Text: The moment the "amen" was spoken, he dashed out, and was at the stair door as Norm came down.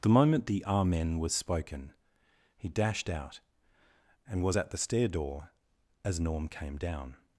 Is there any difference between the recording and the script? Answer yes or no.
no